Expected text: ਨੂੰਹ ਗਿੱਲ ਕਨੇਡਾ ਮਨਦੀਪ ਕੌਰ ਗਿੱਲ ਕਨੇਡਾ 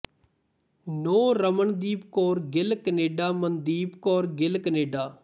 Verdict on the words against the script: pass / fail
fail